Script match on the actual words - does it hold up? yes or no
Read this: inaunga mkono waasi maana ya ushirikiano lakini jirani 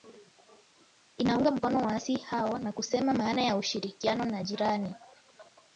no